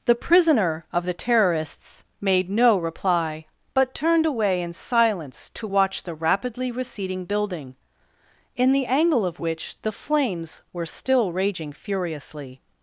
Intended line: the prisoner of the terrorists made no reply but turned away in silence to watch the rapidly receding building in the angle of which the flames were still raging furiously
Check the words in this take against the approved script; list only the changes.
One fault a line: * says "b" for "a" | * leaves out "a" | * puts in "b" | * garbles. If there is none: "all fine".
all fine